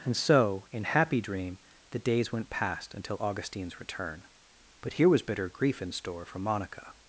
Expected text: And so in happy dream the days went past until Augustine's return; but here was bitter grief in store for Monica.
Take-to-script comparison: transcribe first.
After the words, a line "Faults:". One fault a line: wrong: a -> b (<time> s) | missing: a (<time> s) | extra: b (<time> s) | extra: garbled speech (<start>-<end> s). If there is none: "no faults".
And so in happy dream the days went past until Augustine's return; but here was bitter grief in store for Monica.
Faults:
no faults